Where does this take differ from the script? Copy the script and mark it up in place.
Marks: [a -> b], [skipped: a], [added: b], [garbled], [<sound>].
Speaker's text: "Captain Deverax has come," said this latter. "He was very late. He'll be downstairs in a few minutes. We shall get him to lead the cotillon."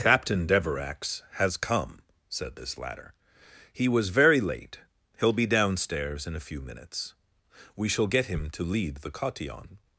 "Captain Deverax has come," said this latter. "He was very late. He'll be downstairs in a few minutes. We shall get him to lead the cotillon."